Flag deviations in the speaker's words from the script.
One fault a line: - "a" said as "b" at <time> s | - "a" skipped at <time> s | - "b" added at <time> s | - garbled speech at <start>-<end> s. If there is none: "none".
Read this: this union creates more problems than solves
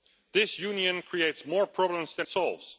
none